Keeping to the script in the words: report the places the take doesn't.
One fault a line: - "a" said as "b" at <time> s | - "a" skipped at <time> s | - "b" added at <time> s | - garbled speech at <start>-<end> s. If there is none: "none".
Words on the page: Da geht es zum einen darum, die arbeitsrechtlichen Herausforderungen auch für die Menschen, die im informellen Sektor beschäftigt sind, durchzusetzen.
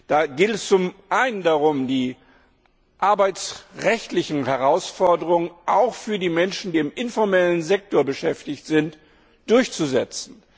- "die" skipped at 6.7 s